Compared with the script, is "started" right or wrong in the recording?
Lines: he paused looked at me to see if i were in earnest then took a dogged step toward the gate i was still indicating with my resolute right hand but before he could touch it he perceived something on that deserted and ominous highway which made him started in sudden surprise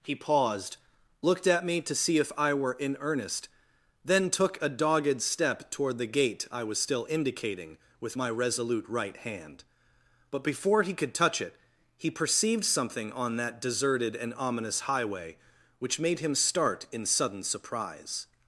wrong